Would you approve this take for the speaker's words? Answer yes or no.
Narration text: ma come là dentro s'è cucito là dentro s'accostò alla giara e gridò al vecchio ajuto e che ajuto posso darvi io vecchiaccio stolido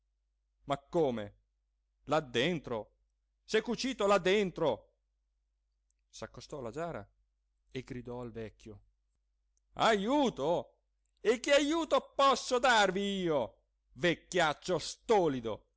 yes